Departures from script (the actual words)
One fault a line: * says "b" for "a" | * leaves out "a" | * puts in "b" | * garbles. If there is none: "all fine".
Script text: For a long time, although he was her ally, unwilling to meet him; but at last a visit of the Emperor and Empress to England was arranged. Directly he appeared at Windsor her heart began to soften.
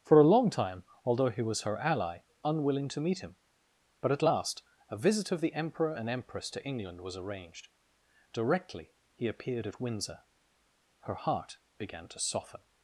all fine